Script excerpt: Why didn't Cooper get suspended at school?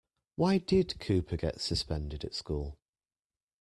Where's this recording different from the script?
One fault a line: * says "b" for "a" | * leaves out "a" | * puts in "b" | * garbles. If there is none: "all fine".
* says "did" for "didn't"